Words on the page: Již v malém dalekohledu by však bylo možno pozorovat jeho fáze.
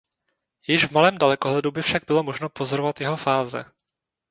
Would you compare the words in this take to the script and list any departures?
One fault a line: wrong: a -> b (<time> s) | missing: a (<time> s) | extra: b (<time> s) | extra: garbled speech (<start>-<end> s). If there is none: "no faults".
no faults